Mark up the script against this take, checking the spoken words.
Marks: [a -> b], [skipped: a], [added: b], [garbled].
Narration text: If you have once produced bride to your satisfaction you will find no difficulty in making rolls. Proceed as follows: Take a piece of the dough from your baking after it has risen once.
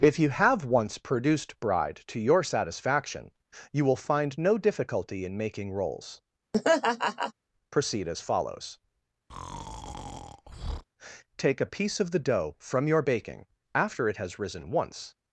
If you have once produced bride to your satisfaction you will find no difficulty in making rolls. Proceed as follows: Take a piece of the dough from your baking after it has risen once.